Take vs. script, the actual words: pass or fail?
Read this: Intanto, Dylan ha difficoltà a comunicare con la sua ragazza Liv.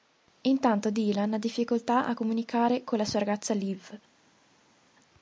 pass